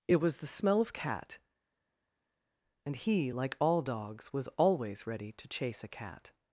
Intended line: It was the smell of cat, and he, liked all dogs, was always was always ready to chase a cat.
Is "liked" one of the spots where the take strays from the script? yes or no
yes